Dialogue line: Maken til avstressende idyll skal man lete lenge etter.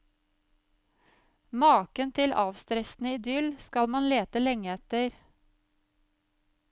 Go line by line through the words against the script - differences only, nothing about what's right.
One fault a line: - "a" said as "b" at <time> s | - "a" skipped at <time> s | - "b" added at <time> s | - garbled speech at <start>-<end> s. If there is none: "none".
none